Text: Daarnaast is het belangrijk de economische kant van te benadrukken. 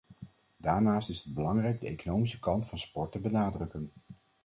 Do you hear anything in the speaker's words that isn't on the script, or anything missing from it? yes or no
yes